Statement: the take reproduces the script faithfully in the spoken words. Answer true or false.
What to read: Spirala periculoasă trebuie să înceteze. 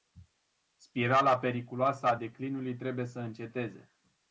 false